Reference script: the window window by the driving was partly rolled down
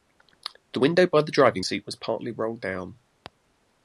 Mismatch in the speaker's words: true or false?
true